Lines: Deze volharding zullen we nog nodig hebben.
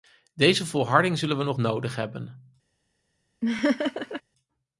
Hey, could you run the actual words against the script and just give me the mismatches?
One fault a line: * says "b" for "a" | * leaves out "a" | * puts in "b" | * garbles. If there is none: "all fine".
all fine